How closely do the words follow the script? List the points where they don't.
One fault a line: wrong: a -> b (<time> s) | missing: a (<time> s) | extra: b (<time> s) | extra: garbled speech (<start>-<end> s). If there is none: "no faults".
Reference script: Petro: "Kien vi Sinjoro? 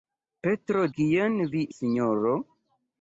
no faults